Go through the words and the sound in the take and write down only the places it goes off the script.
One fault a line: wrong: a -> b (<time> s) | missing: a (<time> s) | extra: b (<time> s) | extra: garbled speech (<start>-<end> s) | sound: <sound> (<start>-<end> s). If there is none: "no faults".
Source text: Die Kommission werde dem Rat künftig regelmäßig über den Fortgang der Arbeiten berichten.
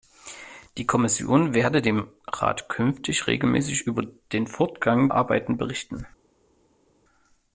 missing: der (5.1 s)